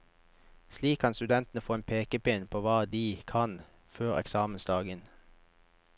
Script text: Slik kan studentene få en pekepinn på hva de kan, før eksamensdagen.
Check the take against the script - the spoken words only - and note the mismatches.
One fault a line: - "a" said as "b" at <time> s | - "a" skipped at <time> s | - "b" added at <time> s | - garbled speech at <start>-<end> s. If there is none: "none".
none